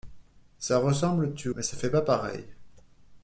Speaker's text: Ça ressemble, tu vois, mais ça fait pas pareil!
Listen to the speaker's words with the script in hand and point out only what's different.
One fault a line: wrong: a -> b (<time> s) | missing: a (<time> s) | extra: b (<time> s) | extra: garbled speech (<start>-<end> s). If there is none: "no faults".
missing: vois (1.5 s)